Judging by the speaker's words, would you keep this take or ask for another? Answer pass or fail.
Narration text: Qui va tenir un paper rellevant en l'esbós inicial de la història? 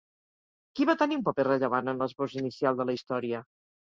pass